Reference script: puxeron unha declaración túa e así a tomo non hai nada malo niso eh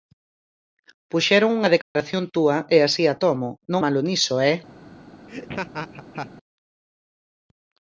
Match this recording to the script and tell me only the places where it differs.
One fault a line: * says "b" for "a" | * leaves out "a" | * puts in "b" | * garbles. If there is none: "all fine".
* leaves out "hai nada"